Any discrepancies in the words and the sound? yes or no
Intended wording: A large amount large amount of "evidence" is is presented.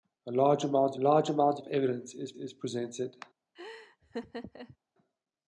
yes